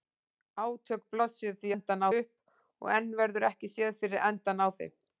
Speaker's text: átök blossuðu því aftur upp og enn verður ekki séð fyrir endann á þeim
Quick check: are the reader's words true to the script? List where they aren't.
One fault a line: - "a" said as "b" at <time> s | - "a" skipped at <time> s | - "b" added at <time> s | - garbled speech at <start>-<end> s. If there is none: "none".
- "aftur" said as "endann" at 1.7 s